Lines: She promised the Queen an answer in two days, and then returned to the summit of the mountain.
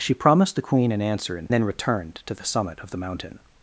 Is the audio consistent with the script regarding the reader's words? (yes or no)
no